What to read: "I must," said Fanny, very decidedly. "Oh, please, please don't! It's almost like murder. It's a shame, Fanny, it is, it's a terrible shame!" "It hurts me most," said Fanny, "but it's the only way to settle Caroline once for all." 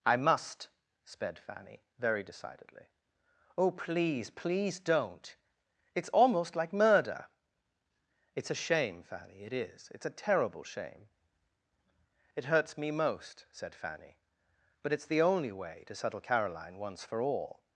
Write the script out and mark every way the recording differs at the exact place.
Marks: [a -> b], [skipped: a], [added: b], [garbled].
"I must," [said -> sped] Fanny, very decidedly. "Oh, please, please don't! It's almost like murder. It's a shame, Fanny, it is, it's a terrible shame!" "It hurts me most," said Fanny, "but it's the only way to settle Caroline once for all."